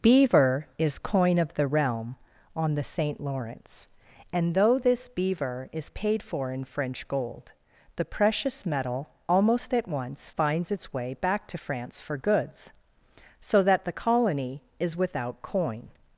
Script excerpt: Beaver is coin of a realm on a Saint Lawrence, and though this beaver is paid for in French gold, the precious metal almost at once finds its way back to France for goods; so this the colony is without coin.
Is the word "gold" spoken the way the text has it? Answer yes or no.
yes